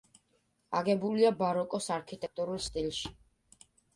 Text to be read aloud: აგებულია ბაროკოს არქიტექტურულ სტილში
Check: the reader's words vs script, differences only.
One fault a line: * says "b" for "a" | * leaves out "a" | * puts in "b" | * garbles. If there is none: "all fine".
all fine